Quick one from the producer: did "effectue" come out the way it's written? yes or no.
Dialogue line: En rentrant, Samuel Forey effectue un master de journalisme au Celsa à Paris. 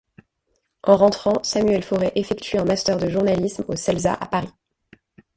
yes